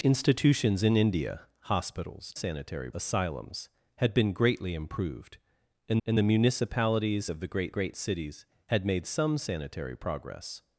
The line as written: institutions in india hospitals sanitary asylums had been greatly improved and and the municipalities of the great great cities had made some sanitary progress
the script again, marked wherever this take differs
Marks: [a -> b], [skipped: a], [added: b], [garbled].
institutions in india hospitals sanitary asylums had been greatly improved and and the municipalities of the great great cities had made some sanitary progress